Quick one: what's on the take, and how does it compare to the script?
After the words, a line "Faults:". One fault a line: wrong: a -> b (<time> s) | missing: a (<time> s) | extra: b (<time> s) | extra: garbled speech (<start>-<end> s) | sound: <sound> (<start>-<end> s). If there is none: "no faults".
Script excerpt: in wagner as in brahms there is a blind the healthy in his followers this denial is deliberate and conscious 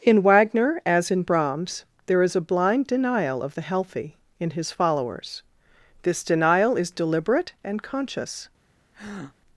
in wagner as in brahms there is a blind denial of the healthy in his followers this denial is deliberate and conscious
Faults:
extra: denial of (2.9 s)
sound: breath (8.9-9.4 s)